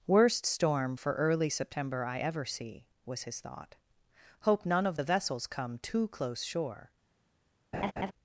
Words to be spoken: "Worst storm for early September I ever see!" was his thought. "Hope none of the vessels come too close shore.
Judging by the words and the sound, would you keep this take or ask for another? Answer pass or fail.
fail